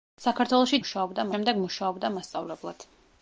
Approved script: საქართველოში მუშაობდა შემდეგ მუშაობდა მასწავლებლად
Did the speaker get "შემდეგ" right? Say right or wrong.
right